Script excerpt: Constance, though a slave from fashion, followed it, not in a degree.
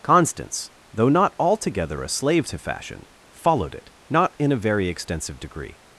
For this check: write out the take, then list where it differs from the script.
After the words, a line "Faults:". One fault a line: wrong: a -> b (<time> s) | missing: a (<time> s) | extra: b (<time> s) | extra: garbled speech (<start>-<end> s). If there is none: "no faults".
Constance, though not altogether a slave to fashion, followed it, not in a very extensive degree.
Faults:
extra: not altogether (1.1 s)
wrong: from -> to (2.5 s)
extra: very extensive (4.6 s)